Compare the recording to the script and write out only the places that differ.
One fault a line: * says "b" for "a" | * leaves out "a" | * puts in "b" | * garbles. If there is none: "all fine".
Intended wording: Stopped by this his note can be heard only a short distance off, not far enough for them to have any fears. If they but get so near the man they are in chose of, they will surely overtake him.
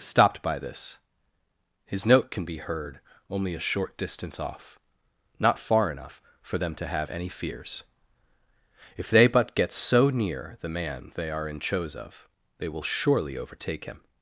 all fine